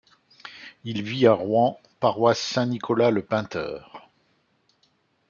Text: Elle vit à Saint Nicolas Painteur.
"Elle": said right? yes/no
no